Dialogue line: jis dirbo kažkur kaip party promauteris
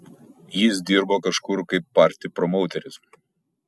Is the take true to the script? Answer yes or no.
yes